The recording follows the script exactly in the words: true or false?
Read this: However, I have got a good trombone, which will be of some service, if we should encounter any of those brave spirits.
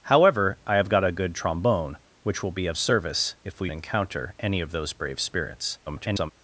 false